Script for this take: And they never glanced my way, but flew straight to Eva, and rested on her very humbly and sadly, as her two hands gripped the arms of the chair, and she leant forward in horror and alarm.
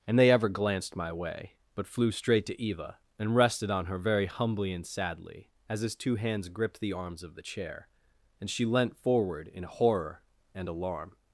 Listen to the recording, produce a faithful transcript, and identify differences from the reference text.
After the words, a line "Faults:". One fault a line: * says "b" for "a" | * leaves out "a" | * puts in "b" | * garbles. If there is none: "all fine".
And they ever glanced my way, but flew straight to Eva, and rested on her very humbly and sadly, as his two hands gripped the arms of the chair, and she leant forward in horror and alarm.
Faults:
* says "ever" for "never"
* says "his" for "her"